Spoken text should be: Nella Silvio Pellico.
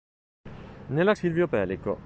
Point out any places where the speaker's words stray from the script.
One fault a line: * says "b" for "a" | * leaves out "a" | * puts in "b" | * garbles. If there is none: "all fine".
all fine